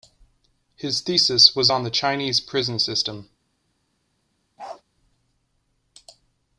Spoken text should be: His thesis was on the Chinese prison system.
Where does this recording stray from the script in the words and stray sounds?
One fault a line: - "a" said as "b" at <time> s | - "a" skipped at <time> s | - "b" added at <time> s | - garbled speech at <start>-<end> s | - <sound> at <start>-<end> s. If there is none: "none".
- bark at 4.6-4.8 s